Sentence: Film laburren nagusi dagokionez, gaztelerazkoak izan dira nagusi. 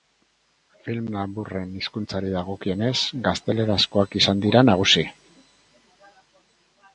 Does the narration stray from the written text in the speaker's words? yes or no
yes